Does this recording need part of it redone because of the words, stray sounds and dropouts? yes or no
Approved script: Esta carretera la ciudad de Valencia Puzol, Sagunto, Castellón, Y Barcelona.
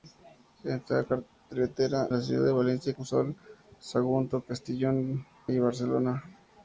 no